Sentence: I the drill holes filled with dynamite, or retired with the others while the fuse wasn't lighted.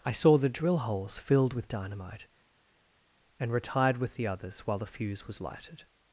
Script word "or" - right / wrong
wrong